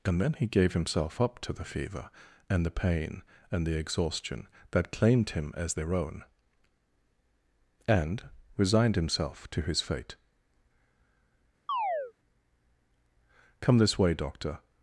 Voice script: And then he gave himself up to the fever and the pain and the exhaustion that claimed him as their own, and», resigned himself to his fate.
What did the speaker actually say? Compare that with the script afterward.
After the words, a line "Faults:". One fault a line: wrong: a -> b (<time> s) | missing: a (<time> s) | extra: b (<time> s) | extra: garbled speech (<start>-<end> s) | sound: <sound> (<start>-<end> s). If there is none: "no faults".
And then he gave himself up to the fever and the pain and the exhaustion that claimed him as their own, and», resigned himself to his fate. "Come this way, doctor
Faults:
sound: chirp (11.7-12.1 s)
extra: Come this way doctor (13.6 s)